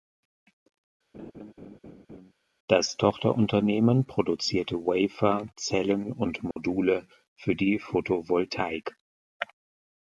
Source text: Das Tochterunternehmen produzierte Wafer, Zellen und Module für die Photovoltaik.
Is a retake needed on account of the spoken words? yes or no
no